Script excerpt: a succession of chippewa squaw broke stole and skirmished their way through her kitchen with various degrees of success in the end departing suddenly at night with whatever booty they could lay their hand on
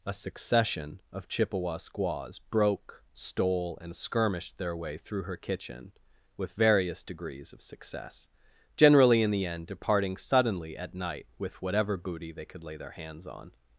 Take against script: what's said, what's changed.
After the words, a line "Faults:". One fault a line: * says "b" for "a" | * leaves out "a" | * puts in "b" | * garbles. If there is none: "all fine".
a succession of chippewa squaws broke stole and skirmished their way through her kitchen with various degrees of success generally in the end departing suddenly at night with whatever booty they could lay their hands on
Faults:
* says "squaws" for "squaw"
* puts in "generally"
* says "hands" for "hand"